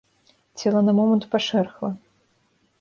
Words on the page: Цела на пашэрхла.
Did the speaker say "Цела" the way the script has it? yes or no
yes